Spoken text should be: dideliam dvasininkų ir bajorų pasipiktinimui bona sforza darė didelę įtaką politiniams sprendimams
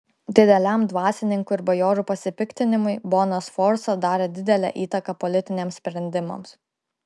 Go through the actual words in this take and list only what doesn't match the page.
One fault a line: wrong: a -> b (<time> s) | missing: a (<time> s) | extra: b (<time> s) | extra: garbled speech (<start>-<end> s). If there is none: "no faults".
no faults